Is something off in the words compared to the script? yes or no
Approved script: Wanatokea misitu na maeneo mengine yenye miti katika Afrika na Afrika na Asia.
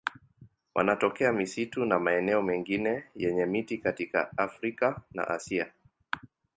yes